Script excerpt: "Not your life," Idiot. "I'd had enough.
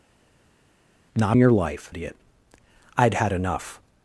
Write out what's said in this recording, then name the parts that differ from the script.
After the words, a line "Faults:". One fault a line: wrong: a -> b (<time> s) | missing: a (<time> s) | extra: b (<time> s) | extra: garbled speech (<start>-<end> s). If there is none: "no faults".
"Not your life," Idiot. "I'd had enough.
Faults:
no faults